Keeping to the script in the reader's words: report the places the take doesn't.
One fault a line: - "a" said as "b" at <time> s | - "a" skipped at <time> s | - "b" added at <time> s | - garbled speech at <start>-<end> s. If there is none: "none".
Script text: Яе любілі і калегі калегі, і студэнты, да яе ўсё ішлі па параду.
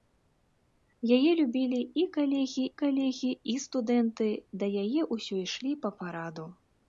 none